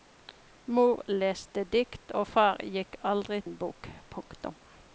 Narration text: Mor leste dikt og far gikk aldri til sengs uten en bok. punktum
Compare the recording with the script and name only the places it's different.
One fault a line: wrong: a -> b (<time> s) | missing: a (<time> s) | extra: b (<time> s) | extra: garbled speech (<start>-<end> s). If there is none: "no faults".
missing: til sengs uten (3.4 s)